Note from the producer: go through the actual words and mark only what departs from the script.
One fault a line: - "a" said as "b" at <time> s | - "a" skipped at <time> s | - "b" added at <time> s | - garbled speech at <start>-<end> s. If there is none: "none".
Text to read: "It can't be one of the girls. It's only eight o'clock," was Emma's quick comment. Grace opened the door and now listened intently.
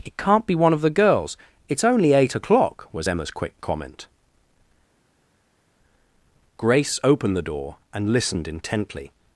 - "now" skipped at 8.1 s